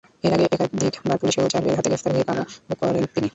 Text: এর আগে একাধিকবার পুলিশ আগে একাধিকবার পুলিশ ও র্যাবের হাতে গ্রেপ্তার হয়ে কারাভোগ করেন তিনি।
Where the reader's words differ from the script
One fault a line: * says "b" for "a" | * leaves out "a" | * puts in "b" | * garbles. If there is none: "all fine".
* leaves out "আগে একাধিকবার পুলিশ"